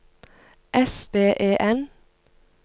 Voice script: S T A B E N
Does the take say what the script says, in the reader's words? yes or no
no